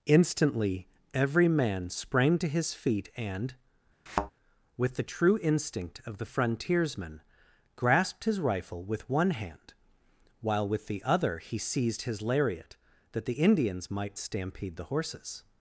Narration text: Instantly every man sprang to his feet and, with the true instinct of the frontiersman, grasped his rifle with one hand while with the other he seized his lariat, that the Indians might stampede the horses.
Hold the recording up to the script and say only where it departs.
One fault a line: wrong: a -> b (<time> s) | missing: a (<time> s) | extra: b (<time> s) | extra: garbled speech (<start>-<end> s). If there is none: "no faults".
no faults